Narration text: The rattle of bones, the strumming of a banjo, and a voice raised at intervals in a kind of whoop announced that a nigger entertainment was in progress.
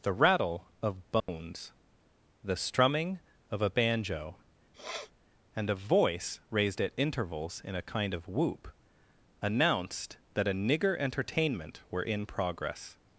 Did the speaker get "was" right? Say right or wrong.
wrong